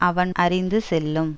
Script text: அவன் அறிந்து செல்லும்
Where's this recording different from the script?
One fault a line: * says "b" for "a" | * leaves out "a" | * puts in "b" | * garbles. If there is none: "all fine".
all fine